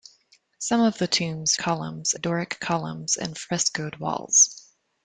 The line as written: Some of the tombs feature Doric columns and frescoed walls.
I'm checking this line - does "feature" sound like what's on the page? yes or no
no